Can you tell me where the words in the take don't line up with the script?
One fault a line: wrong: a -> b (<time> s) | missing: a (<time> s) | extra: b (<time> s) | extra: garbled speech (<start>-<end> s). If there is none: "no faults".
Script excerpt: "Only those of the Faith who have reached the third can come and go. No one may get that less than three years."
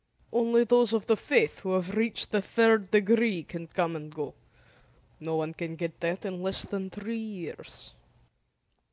extra: degree (2.9 s)
wrong: may -> can (5.5 s)
extra: in (6.2 s)